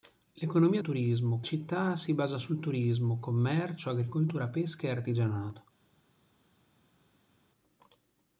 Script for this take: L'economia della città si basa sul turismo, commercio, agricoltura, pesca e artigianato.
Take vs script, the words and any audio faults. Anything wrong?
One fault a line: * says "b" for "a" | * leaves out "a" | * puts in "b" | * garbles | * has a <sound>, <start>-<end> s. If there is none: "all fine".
* says "turismo" for "della"